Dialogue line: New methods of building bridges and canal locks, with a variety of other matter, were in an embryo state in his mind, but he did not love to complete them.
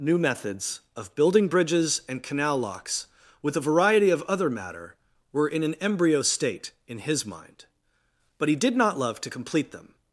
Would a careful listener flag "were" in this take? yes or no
no